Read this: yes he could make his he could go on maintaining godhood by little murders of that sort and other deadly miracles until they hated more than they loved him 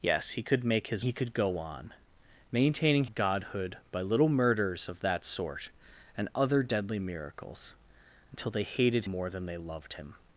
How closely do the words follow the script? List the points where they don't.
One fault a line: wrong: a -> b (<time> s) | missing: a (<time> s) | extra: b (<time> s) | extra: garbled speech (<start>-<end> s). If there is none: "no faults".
no faults